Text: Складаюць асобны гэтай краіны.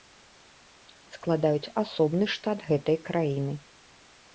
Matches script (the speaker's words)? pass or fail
fail